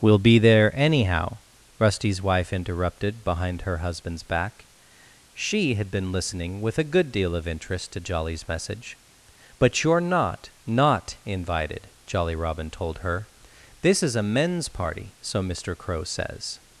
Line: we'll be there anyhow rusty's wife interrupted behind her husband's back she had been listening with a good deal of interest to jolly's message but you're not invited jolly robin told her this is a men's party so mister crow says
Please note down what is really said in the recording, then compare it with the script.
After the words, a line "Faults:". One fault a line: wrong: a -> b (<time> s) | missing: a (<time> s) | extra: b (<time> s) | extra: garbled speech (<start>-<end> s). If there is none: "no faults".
we'll be there anyhow rusty's wife interrupted behind her husband's back she had been listening with a good deal of interest to jolly's message but you're not not invited jolly robin told her this is a men's party so mister crow says
Faults:
extra: not (10.6 s)